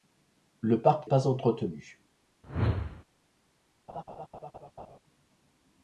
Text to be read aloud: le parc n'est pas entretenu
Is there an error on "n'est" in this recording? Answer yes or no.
yes